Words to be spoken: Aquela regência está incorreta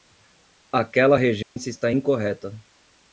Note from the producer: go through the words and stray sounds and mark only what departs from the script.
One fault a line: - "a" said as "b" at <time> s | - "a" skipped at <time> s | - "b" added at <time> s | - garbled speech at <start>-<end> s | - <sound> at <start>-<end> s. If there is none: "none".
- dropout at 1.4-1.6 s